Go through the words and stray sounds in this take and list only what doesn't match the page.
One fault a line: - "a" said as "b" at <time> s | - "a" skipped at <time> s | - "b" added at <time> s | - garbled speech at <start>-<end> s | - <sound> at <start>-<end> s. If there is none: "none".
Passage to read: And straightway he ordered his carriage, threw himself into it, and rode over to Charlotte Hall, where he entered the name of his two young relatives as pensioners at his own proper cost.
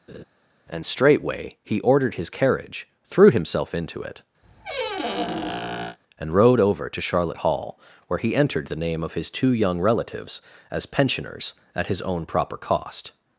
- laugh at 0.1-0.2 s
- squeak at 4.4-6.0 s